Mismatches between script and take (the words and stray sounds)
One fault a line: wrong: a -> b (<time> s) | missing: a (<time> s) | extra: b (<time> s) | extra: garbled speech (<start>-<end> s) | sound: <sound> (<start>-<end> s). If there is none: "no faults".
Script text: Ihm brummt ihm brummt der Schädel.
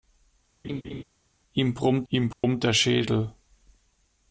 sound: laugh (0.6-1.0 s)
sound: dropout (2.3-2.4 s)